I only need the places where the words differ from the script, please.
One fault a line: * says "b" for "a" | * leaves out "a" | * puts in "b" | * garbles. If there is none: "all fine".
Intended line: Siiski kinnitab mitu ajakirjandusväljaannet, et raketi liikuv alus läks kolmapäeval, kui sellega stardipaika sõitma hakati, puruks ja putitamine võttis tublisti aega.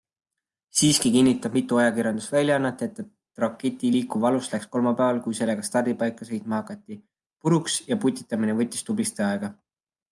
all fine